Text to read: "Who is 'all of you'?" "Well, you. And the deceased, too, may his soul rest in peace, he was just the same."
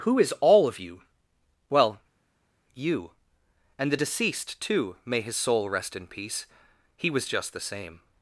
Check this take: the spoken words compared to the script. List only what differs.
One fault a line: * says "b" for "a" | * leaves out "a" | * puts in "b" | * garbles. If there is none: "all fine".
all fine